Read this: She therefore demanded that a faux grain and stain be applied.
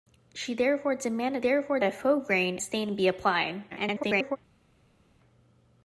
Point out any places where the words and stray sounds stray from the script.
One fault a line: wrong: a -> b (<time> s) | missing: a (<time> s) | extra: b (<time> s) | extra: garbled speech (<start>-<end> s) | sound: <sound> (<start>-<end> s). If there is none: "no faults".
wrong: that -> therefore (1.4 s)
missing: and (2.6 s)
extra: garbled speech (3.7-4.4 s)